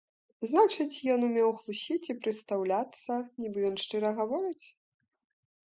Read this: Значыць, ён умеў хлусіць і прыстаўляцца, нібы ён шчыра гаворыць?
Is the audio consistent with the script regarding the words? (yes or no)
yes